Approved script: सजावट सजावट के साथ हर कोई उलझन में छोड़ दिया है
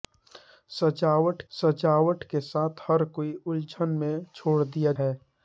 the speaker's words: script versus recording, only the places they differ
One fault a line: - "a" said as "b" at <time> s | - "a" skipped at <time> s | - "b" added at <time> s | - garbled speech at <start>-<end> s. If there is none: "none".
none